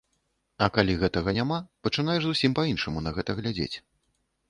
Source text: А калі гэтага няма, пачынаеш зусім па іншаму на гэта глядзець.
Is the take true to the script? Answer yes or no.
yes